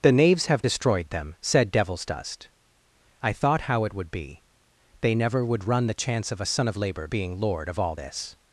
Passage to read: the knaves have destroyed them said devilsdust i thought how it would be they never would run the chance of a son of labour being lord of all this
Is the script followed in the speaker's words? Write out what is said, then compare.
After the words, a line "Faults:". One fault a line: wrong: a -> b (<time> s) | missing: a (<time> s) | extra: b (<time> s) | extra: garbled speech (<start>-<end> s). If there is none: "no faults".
the knaves have destroyed them said devilsdust i thought how it would be they never would run the chance of a son of labour being lord of all this
Faults:
no faults